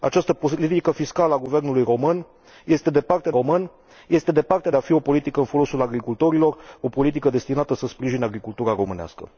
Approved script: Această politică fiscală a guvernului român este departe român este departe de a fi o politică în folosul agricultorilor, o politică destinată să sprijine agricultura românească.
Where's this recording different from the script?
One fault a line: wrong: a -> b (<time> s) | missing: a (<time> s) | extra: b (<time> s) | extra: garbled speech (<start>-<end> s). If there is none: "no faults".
no faults